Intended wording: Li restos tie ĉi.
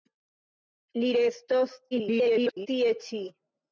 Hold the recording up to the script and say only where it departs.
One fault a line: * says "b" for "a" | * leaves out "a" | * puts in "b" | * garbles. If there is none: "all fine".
* garbles